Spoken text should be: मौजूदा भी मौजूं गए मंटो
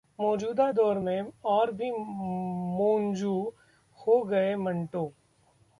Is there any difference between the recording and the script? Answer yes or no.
yes